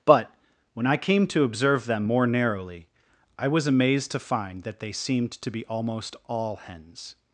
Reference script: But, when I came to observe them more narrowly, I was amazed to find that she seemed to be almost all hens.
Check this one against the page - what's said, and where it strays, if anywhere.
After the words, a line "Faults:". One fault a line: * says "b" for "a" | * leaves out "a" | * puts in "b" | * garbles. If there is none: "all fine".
But, when I came to observe them more narrowly, I was amazed to find that they seemed to be almost all hens.
Faults:
* says "they" for "she"